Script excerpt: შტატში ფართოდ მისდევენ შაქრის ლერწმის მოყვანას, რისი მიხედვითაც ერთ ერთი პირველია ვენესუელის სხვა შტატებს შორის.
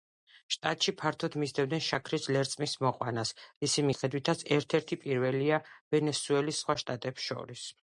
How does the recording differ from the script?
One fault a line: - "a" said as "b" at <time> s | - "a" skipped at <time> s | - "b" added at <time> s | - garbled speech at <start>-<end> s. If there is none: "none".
none